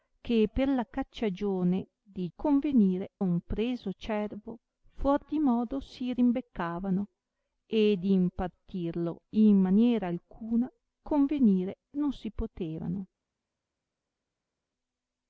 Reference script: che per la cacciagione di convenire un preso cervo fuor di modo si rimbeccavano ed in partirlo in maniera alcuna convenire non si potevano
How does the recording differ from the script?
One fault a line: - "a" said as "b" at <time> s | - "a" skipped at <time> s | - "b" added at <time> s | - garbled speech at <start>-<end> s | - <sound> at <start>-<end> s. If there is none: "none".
none